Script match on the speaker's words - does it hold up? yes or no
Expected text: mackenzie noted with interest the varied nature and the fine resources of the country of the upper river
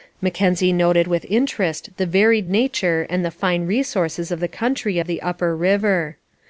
yes